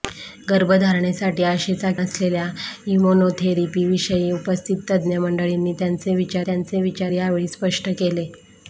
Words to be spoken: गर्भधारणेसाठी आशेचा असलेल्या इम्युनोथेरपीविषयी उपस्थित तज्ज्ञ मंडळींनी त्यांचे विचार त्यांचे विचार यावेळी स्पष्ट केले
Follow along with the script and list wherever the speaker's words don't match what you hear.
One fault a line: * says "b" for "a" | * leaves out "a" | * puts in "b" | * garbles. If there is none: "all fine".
all fine